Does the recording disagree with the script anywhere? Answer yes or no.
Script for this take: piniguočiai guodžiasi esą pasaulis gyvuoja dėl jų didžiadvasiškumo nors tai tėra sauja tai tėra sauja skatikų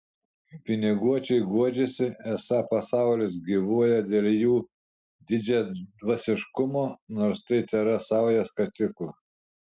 yes